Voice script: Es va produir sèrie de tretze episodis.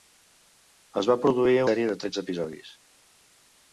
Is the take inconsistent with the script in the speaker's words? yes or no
no